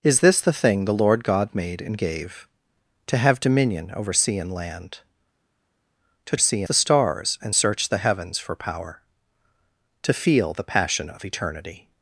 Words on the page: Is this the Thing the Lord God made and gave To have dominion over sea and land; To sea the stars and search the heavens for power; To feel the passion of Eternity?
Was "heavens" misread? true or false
false